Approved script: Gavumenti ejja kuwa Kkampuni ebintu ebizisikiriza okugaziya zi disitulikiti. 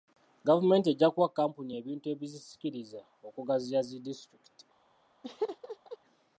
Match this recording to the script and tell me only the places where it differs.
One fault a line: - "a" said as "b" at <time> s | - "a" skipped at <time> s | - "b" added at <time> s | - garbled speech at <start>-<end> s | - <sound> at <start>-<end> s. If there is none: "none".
- laugh at 5.2-6.0 s